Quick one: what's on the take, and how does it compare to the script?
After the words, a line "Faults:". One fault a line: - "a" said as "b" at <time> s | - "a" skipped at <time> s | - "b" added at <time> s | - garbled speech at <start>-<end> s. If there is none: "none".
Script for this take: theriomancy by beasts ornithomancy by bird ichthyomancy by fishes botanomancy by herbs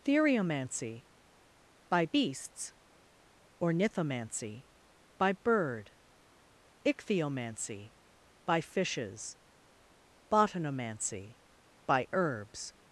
theriomancy by beasts ornithomancy by bird ichthyomancy by fishes botanomancy by herbs
Faults:
none